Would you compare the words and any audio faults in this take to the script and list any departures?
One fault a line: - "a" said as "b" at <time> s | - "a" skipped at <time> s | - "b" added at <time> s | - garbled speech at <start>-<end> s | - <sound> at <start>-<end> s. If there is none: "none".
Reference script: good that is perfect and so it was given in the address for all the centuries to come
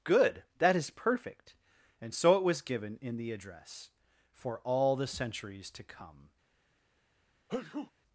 - sneeze at 7.5-7.9 s